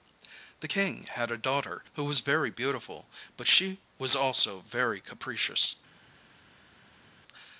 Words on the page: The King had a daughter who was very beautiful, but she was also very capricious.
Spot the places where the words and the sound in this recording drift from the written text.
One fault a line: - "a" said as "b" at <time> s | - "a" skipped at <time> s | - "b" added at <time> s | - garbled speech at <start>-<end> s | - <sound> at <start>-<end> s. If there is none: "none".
none